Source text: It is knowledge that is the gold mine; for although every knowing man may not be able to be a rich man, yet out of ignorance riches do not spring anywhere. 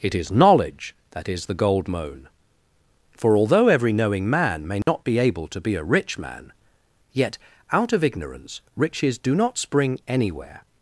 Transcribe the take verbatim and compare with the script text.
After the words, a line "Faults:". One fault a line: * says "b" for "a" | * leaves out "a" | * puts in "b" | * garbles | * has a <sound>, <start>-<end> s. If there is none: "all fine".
It is knowledge that is the gold moan; for although every knowing man may not be able to be a rich man, yet out of ignorance riches do not spring anywhere.
Faults:
* says "moan" for "mine"
* has a dropout, 4.8-4.9 s